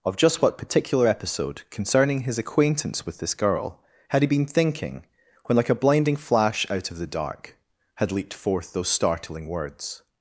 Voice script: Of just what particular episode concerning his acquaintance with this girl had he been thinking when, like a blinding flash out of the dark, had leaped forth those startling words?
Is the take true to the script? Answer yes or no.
yes